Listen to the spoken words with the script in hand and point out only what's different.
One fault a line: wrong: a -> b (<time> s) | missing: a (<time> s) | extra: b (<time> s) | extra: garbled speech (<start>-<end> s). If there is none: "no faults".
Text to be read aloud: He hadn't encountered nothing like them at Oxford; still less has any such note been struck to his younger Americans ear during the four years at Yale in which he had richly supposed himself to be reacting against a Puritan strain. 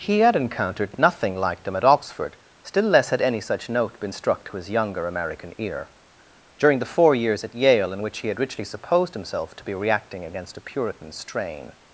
wrong: hadn't -> had (0.2 s)
wrong: has -> had (3.1 s)
wrong: Americans -> American (5.1 s)